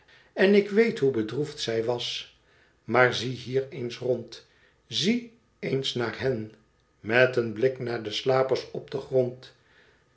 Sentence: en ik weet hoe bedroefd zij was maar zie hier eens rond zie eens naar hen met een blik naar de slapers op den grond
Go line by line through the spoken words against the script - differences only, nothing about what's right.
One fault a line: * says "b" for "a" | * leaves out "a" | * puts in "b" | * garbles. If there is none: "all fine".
all fine